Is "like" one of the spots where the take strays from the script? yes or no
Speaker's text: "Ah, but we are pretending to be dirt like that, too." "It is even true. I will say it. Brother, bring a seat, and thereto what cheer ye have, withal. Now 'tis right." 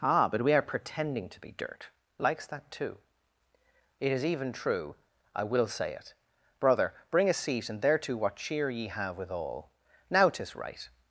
yes